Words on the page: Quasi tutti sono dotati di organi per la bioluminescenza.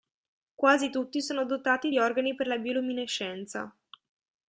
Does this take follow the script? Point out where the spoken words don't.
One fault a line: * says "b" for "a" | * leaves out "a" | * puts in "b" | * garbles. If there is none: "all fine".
all fine